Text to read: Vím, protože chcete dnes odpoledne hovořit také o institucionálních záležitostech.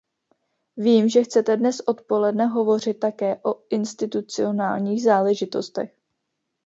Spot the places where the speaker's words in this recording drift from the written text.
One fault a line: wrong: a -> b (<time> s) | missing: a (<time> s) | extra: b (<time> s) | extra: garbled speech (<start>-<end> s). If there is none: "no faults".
wrong: protože -> že (1.1 s)